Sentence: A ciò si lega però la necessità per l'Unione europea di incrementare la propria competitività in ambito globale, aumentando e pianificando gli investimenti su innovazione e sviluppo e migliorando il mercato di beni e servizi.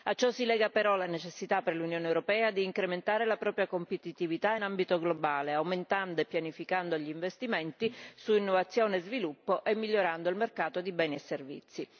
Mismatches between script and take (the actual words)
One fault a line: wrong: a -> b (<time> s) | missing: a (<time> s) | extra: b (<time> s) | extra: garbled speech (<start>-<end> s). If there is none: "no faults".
no faults